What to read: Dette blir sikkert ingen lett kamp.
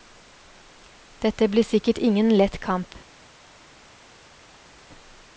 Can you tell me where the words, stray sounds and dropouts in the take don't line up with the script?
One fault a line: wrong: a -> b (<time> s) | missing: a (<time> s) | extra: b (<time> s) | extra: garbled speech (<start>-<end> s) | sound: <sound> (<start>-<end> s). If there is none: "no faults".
no faults